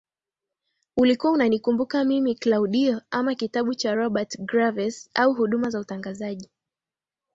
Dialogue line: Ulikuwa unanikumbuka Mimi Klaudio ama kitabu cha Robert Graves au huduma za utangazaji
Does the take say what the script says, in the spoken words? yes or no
yes